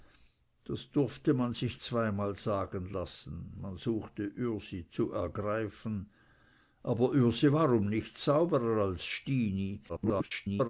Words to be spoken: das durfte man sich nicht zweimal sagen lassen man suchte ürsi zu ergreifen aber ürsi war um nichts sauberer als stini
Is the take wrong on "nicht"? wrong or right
wrong